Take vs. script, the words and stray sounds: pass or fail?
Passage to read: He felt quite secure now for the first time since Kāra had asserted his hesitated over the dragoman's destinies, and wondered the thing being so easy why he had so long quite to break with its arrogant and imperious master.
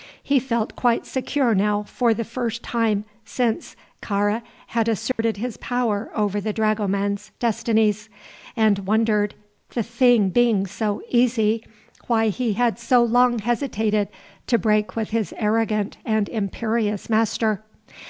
fail